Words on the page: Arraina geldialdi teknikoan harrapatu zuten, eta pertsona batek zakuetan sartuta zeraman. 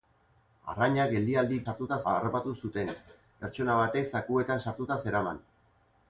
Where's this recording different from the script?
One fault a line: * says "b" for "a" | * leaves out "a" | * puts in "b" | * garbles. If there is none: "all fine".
* says "sartuta" for "teknikoan"
* leaves out "eta"